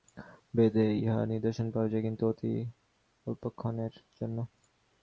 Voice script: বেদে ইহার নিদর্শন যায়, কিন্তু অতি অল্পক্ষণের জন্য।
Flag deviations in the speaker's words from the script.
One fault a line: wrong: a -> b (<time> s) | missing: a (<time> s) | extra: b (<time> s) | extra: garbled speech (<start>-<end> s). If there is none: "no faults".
extra: পাওয়া (1.7 s)